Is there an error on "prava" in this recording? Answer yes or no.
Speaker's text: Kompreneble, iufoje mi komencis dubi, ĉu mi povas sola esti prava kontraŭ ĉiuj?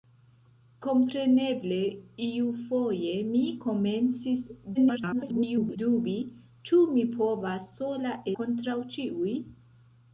yes